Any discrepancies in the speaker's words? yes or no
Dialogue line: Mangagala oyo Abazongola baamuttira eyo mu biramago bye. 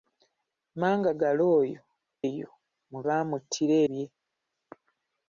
yes